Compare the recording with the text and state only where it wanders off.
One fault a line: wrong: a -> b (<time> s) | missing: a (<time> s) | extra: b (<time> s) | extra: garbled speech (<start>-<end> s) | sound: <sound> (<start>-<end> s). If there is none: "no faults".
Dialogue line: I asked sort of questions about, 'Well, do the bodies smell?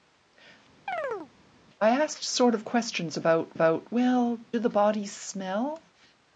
sound: chirp (0.9-1.3 s)
extra: about (3.5 s)